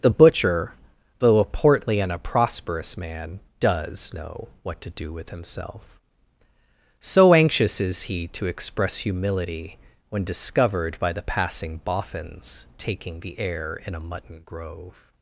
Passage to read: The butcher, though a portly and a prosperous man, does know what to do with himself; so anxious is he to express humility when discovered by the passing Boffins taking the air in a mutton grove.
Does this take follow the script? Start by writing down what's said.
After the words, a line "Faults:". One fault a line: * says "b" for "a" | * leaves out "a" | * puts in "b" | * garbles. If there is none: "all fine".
The butcher, though a portly and a prosperous man, does know what to do with himself; so anxious is he to express humility when discovered by the passing Boffins taking the air in a mutton grove.
Faults:
all fine